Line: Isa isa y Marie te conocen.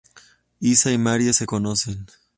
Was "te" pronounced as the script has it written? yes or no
no